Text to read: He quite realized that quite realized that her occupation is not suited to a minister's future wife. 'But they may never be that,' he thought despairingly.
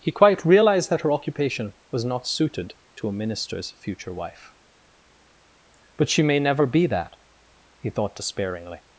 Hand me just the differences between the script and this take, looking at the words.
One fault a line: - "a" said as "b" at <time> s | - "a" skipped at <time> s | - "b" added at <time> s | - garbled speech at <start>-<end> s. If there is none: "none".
- "quite realized that" skipped at 1.0 s
- "is" said as "was" at 1.9 s
- "they" said as "she" at 6.1 s